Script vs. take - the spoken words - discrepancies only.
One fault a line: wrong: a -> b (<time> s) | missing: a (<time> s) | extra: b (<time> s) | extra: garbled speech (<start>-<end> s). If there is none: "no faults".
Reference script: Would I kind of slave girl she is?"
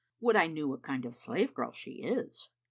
extra: knew what (0.5 s)